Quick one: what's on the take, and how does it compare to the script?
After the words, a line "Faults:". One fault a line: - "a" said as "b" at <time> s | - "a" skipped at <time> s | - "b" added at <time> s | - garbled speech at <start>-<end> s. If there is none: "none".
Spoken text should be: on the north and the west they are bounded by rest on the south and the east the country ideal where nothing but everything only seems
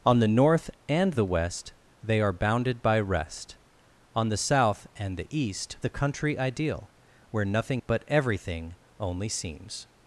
on the north and the west they are bounded by rest on the south and the east the country ideal where nothing but everything only seems
Faults:
none